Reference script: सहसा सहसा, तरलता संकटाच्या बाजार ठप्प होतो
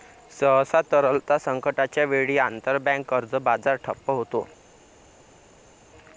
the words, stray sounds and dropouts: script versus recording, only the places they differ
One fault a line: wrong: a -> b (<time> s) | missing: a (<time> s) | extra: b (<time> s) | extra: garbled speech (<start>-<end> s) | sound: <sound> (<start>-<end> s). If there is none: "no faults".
missing: सहसा (0.8 s)
extra: वेळी आंतरबँक कर्ज (2.1 s)